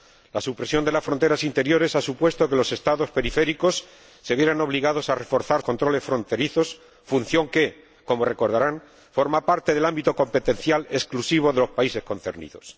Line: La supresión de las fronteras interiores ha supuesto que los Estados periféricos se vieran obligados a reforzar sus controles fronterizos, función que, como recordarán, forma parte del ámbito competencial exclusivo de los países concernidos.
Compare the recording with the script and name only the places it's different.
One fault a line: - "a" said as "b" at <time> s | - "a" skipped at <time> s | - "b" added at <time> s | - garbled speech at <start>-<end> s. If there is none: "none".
- "sus" skipped at 5.6 s